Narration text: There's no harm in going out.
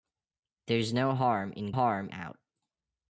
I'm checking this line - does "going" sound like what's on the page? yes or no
no